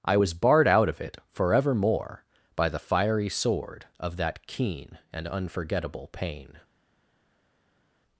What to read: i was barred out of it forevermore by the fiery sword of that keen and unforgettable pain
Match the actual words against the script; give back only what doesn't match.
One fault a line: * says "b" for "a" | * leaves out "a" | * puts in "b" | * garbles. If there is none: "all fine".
all fine